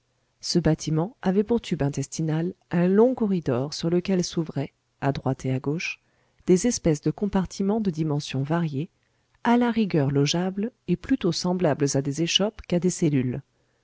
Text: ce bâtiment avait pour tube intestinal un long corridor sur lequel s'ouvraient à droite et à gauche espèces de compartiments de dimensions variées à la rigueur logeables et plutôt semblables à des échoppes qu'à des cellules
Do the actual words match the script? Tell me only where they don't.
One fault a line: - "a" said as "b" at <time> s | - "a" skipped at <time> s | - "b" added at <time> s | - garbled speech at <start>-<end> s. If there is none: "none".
- "des" added at 6.5 s